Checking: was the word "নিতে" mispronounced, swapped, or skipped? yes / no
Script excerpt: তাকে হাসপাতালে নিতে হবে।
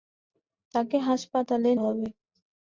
yes